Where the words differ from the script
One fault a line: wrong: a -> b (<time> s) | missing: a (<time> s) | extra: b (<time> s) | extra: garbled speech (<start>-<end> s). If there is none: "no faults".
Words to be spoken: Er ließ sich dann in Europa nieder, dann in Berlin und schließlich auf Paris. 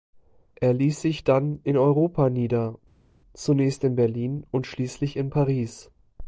wrong: dann -> zunächst (3.3 s)
wrong: auf -> in (5.2 s)